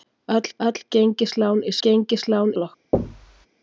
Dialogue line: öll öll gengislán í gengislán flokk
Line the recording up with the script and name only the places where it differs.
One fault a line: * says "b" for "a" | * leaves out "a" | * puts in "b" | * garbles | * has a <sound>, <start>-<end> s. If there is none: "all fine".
* has a thud, 2.9-3.5 s